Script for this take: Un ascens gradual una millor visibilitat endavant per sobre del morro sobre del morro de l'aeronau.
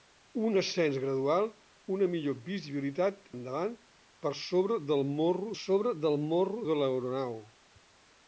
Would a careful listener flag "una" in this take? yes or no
no